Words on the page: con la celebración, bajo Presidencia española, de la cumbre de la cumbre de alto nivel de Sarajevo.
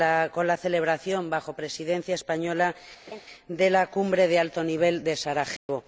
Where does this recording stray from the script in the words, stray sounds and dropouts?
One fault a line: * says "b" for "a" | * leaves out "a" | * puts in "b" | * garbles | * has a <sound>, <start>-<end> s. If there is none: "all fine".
* has a laugh, 3.1-3.2 s
* leaves out "la cumbre de"
* has a dropout, 5.6-5.7 s